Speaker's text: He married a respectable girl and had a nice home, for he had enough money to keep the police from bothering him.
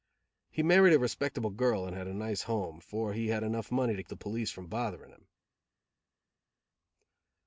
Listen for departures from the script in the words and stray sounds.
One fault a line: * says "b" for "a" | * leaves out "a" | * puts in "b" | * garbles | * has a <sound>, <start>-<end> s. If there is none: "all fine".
* leaves out "keep"